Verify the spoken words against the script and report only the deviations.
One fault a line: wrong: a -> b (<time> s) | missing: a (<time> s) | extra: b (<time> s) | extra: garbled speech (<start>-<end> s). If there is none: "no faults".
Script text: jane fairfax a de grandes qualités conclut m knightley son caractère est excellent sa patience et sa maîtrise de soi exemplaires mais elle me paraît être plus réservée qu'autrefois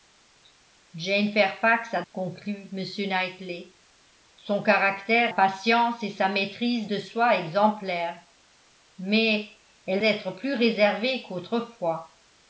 missing: de grandes qualités (2.0 s)
missing: est excellent sa (5.3 s)
missing: me paraît (10.0 s)